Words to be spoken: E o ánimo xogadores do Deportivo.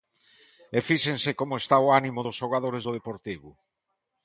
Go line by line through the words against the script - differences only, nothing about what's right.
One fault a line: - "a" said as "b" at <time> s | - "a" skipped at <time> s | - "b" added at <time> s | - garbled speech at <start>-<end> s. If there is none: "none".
- "fíxense como está" added at 0.9 s
- "dos" added at 2.2 s